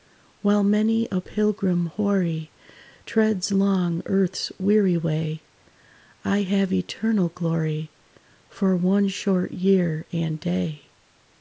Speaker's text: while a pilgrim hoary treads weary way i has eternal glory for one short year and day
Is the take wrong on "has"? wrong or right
wrong